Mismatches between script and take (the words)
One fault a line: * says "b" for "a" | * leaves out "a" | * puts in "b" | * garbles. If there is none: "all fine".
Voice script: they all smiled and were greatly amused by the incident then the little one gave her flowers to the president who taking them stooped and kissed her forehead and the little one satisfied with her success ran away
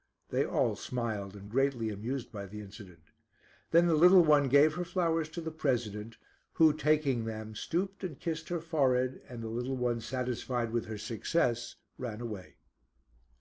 * leaves out "were"